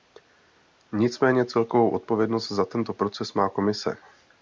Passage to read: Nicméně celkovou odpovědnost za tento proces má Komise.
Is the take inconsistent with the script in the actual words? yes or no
no